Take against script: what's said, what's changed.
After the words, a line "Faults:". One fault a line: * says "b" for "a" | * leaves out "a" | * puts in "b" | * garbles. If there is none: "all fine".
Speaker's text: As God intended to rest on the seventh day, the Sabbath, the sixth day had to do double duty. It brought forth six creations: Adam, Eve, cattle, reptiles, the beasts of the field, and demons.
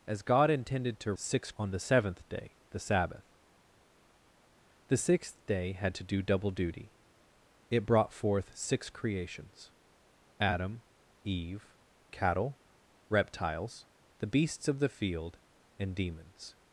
As God intended to six on the seventh day, the Sabbath, the sixth day had to do double duty. It brought forth six creations: Adam, Eve, cattle, reptiles, the beasts of the field, and demons.
Faults:
* says "six" for "rest"